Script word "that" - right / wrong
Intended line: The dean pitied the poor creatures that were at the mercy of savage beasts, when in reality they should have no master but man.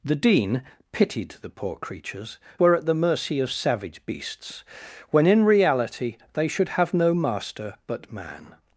wrong